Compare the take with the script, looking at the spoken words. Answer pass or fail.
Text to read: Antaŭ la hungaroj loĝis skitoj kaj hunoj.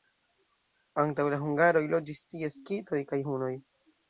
fail